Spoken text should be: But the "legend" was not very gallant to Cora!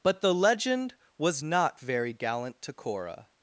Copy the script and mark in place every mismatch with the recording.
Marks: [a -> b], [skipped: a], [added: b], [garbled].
But the "legend" was not very gallant to Cora!